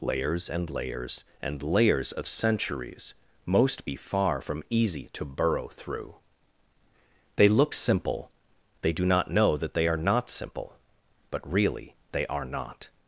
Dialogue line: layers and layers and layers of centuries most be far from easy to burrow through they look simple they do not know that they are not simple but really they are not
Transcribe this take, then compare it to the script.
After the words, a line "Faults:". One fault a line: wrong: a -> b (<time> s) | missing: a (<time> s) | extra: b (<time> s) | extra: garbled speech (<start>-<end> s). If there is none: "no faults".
layers and layers and layers of centuries most be far from easy to burrow through they look simple they do not know that they are not simple but really they are not
Faults:
no faults